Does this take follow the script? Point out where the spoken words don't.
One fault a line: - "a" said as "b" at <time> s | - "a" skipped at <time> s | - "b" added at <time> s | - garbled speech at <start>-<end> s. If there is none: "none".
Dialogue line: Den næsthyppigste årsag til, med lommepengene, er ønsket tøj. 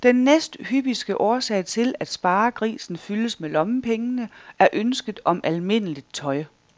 - "at sparegrisen fyldes" added at 2.0 s
- "om almindeligt" added at 5.2 s